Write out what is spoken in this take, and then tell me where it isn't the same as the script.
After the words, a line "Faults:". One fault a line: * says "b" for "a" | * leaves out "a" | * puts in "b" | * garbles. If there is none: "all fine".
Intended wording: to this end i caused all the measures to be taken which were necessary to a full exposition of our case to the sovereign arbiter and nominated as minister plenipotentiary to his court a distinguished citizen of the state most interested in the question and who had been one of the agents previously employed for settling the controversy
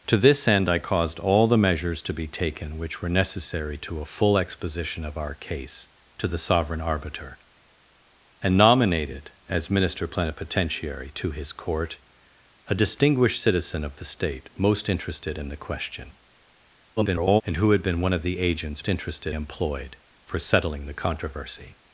to this end i caused all the measures to be taken which were necessary to a full exposition of our case to the sovereign arbiter and nominated as minister plenipotentiary to his court a distinguished citizen of the state most interested in the question [garbled] and who had been one of the agents interested employed for settling the controversy
Faults:
* garbles
* says "interested" for "previously"